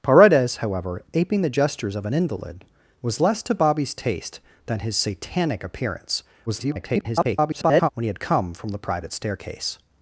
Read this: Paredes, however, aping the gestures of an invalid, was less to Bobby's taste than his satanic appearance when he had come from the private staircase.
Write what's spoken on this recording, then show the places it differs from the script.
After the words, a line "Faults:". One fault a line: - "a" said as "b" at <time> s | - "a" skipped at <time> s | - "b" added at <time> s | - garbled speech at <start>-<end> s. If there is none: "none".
Paredes, however, aping the gestures of an invalid, was less to Bobby's taste than his satanic appearance [garbled] when he had come from the private staircase.
Faults:
- garbled speech at 6.5-7.9 s